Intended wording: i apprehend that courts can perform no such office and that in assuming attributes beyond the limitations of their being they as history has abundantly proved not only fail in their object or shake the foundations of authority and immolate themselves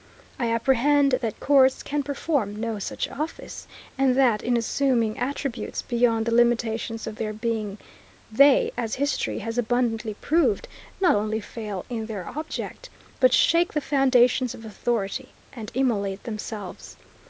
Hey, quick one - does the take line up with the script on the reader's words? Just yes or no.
no